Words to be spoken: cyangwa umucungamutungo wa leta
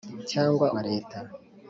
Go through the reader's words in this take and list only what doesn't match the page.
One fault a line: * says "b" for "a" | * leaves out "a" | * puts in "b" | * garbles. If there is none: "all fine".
* leaves out "umucungamutungo"